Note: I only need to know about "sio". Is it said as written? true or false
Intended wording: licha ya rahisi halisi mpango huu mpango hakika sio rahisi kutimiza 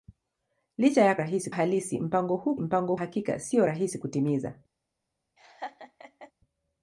true